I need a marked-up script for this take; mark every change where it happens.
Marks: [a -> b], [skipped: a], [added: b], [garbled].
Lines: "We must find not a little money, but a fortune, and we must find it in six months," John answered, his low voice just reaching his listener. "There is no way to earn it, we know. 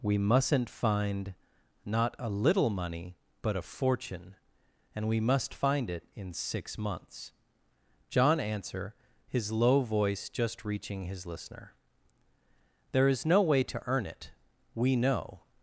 "We [must -> mustn't] find not a little money, but a fortune, and we must find it in six months," John [answered, -> answer] his low voice just reaching his listener. "There is no way to earn it, we know.